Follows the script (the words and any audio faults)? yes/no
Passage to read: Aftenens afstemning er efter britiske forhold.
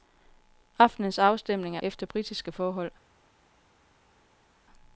yes